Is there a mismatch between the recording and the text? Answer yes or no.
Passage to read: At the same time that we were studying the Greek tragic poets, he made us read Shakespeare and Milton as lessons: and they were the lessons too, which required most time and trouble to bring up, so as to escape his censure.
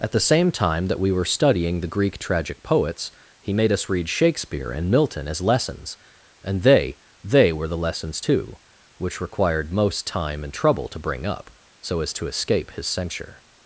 yes